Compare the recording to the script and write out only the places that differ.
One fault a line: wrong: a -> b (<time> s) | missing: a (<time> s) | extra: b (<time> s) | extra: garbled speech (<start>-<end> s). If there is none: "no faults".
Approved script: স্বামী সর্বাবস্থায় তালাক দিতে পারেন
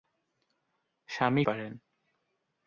missing: সর্বাবস্থায় তালাক দিতে (1.4 s)